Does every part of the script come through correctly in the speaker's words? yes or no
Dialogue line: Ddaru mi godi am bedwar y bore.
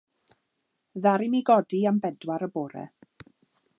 yes